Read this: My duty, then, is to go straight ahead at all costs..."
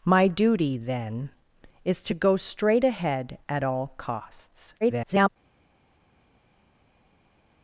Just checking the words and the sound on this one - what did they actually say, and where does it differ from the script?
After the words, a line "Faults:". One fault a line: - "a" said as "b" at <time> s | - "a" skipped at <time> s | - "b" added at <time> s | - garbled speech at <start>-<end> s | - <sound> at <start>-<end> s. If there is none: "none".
My duty, then, is to go straight ahead at all costs..." [garbled]
Faults:
- garbled speech at 4.8-5.3 s